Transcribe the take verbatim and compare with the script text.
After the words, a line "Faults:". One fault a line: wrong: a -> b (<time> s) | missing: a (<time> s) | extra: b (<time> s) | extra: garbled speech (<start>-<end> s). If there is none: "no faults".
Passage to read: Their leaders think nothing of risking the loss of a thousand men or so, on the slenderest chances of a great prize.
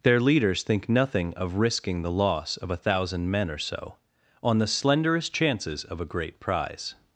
Their leaders think nothing of risking the loss of a thousand men or so, on the slenderest chances of a great prize.
Faults:
no faults